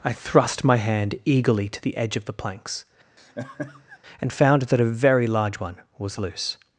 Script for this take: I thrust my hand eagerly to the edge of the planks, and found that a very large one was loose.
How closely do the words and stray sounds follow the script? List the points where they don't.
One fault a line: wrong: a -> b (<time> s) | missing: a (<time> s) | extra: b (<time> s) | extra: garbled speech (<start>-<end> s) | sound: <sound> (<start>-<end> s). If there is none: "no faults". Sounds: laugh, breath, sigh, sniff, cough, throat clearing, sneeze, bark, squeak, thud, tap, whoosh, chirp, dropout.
sound: laugh (3.2-4.0 s)